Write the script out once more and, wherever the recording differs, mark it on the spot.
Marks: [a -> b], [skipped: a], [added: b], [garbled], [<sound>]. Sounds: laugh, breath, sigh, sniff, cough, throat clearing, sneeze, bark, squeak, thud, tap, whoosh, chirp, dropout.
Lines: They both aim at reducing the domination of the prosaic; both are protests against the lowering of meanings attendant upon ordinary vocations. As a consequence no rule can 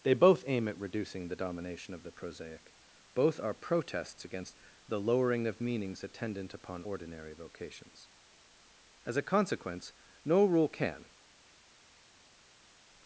They both aim at reducing the domination of the prosaic; both are protests against the lowering of meanings attendant upon ordinary vocations. As a consequence no rule can